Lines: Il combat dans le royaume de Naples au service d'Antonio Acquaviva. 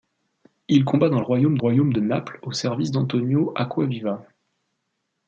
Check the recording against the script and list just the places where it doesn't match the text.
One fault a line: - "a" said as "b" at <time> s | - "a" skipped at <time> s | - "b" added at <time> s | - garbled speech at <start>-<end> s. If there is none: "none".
- "royaume" added at 1.6 s